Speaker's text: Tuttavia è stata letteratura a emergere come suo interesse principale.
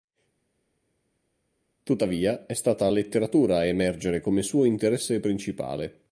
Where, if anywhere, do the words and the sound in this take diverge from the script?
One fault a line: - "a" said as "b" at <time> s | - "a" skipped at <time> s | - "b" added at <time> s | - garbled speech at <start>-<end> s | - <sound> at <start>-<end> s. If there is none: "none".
none